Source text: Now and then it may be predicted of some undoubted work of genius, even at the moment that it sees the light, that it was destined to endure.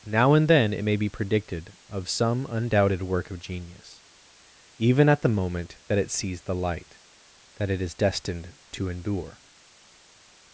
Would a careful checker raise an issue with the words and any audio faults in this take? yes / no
yes